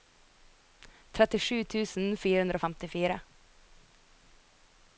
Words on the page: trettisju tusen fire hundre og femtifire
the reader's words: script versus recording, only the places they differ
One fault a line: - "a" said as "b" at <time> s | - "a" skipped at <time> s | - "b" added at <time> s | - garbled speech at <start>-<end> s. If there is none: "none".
none